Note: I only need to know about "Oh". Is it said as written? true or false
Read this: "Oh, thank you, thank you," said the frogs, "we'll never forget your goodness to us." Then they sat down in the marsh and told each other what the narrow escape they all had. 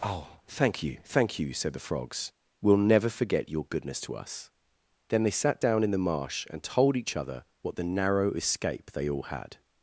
true